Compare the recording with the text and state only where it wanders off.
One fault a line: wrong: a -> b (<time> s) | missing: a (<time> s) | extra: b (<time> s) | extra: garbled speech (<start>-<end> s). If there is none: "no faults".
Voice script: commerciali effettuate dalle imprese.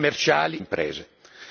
missing: effettuate dalle (0.6 s)